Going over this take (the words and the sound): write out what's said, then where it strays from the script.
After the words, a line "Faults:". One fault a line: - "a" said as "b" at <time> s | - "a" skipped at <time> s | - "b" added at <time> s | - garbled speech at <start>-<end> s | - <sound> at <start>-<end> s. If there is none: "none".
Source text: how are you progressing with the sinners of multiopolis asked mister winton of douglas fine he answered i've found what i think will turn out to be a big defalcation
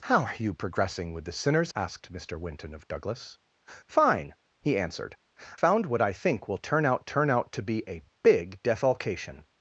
how are you progressing with the sinners asked mister winton of douglas fine he answered found what i think will turn out turn out to be a big defalcation
Faults:
- "of multiopolis" skipped at 1.7 s
- "i've" skipped at 5.1 s
- "turn out" added at 7.0 s